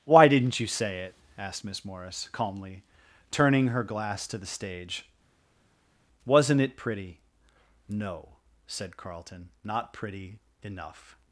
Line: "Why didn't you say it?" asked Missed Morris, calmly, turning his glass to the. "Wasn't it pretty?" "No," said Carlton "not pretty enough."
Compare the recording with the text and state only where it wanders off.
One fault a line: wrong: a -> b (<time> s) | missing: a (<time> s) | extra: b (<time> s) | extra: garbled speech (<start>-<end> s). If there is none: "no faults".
wrong: Missed -> Miss (1.6 s)
wrong: his -> her (3.7 s)
extra: stage (4.5 s)